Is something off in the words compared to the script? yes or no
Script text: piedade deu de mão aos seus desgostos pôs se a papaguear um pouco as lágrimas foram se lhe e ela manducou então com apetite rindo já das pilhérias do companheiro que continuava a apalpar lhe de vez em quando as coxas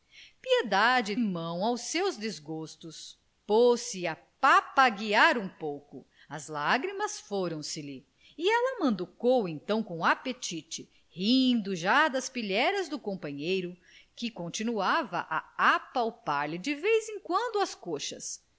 yes